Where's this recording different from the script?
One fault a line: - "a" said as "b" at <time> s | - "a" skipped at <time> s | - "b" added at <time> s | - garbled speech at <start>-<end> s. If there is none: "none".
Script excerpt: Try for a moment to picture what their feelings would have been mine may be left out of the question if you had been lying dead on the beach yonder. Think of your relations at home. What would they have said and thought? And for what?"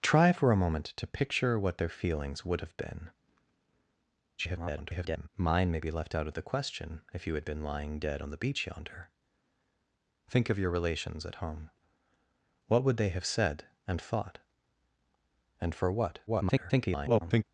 - garbled speech at 4.4-5.3 s
- garbled speech at 16.3-17.4 s